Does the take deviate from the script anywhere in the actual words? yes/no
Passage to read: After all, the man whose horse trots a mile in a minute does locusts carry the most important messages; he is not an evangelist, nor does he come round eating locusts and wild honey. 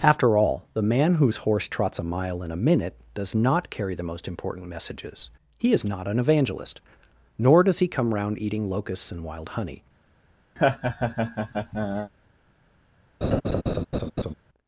yes